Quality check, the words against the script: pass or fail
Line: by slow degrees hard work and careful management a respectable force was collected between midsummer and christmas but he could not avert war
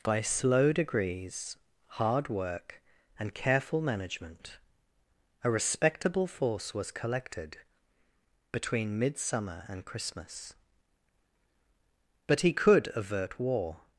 fail